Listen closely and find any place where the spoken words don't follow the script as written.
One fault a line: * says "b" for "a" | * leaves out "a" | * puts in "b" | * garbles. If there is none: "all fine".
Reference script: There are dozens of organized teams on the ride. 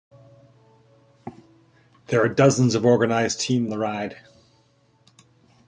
* leaves out "on"